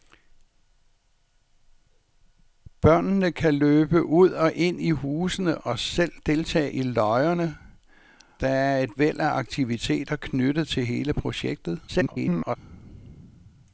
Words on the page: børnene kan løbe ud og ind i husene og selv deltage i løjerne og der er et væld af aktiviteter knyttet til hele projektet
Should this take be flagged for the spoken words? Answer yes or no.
yes